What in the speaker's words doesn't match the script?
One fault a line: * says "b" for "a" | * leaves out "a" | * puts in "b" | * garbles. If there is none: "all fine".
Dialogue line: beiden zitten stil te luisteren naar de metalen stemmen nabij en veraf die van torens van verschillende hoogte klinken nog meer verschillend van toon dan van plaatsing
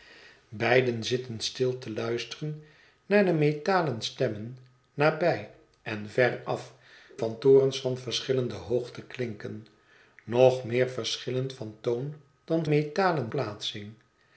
* leaves out "die"
* says "metalen" for "van"